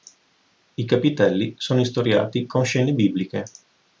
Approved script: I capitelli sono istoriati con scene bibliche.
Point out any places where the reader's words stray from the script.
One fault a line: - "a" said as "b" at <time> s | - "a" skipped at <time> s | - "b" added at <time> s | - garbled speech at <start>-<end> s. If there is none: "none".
none